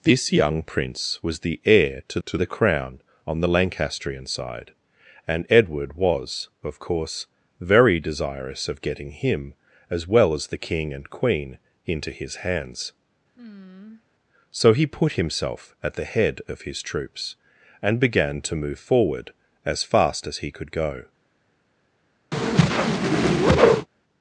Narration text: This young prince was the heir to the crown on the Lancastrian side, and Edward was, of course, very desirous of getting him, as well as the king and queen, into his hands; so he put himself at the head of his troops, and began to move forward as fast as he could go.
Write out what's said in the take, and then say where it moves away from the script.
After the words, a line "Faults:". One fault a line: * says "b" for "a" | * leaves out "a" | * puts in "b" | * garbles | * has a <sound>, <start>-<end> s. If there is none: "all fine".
This young prince was the heir to to the crown on the Lancastrian side, and Edward was, of course, very desirous of getting him, as well as the king and queen, into his hands; so he put himself at the head of his troops, and began to move forward as fast as he could go.
Faults:
* puts in "to"
* has a sigh, 13.4-14.0 s
* has a whoosh, 22.3-23.9 s